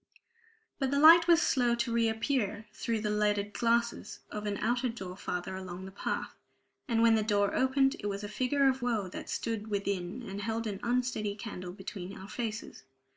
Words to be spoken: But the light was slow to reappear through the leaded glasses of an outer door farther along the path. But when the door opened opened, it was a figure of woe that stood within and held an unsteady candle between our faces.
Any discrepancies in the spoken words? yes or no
yes